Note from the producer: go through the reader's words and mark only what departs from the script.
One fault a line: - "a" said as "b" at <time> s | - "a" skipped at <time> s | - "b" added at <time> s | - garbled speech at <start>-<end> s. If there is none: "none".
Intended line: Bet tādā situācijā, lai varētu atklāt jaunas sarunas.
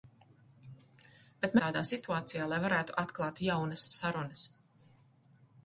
none